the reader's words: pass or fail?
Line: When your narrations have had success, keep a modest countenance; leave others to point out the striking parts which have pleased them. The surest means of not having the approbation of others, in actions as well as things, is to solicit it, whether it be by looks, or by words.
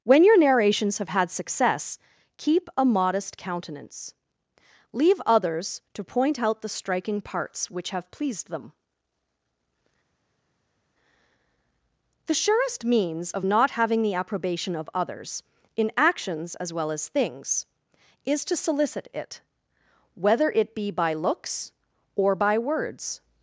pass